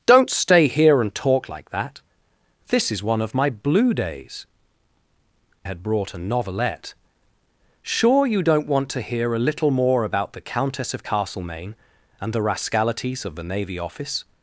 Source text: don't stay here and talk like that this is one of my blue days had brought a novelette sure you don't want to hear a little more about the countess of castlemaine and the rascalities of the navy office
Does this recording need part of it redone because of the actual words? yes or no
no